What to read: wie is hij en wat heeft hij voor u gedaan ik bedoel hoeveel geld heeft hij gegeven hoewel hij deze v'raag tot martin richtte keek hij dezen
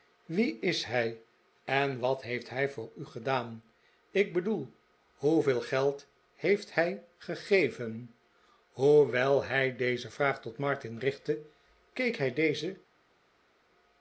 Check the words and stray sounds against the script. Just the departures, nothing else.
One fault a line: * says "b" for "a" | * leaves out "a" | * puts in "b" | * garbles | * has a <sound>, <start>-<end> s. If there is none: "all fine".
all fine